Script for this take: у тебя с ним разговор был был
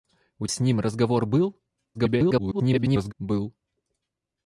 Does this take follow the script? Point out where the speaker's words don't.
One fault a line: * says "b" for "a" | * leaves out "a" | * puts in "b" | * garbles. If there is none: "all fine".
* leaves out "тебя"
* garbles